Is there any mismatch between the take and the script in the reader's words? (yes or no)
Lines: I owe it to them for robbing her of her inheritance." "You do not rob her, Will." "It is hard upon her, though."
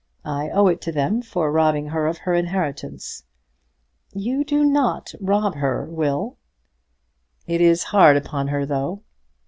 no